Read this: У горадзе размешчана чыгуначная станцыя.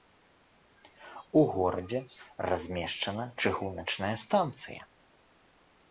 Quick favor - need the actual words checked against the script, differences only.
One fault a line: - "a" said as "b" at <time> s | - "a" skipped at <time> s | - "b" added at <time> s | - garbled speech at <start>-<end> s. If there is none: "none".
none